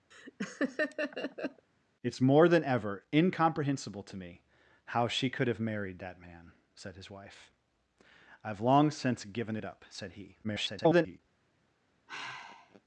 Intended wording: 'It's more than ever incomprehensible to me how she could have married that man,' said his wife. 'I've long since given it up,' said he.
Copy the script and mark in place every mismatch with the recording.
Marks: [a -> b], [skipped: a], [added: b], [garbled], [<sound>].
[laugh] 'It's more than ever incomprehensible to me how she could have married that man,' said his wife. 'I've long since given it up,' said he. [garbled] [sigh]